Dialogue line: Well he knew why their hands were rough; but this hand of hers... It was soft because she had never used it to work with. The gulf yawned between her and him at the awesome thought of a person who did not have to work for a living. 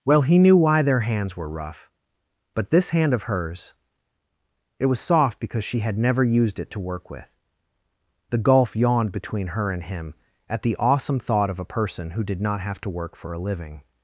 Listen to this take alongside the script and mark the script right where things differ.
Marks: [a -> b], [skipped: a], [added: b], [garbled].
Well he knew why their hands were rough; but this hand of hers... It was soft because she had never used it to work with. The gulf yawned between her and him at the awesome thought of a person who did not have to work for a living.